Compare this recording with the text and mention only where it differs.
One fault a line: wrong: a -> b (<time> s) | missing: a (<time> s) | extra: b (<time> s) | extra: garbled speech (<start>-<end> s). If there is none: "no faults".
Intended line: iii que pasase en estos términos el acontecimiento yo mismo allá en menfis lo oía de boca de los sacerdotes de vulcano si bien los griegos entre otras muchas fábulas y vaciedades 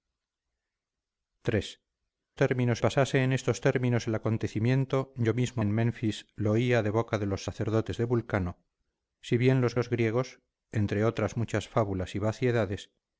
wrong: que -> términos (2.4 s)
missing: allá (5.6 s)
extra: los (9.7 s)